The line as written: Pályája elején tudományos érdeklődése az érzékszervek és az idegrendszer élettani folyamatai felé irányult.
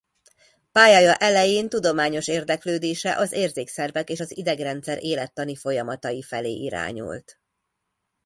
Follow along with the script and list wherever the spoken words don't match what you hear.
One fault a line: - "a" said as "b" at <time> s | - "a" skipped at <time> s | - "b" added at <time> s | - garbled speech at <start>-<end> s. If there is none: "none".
none